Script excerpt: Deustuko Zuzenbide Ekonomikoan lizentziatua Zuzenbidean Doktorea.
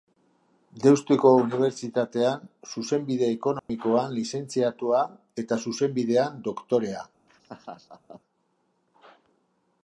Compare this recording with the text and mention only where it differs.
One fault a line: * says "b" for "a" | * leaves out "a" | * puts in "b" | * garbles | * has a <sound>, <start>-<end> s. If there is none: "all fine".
* puts in "Unibertsitatean"
* has a dropout, 3.6-3.7 s
* puts in "eta"
* has a laugh, 7.3-8.2 s